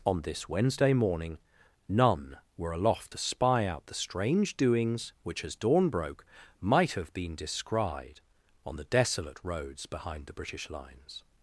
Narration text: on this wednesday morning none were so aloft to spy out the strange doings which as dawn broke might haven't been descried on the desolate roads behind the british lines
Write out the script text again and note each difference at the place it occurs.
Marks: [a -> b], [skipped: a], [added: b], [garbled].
on this wednesday morning none were [skipped: so] aloft to spy out the strange doings which as dawn broke might [haven't -> have] been descried on the desolate roads behind the british lines